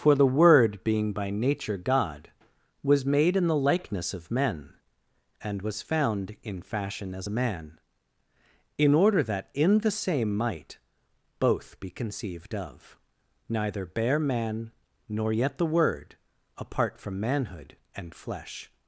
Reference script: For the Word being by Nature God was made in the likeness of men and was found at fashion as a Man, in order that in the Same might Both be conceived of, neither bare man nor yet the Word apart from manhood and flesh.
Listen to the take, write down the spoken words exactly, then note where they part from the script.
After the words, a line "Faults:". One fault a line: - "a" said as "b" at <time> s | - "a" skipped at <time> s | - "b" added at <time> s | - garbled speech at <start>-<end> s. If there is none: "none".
For the Word being by Nature God was made in the likeness of men and was found in fashion as a Man, in order that in the Same might Both be conceived of, neither bare man nor yet the Word apart from manhood and flesh.
Faults:
- "at" said as "in" at 6.4 s